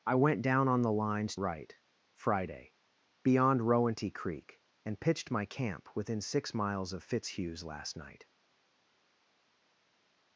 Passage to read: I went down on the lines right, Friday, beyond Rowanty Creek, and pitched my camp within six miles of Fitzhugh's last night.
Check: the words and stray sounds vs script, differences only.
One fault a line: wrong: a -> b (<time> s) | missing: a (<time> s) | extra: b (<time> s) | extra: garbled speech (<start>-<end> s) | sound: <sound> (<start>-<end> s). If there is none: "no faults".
no faults